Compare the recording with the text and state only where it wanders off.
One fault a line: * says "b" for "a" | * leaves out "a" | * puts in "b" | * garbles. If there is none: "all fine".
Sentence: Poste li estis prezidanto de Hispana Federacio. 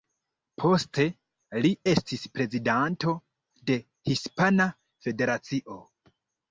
all fine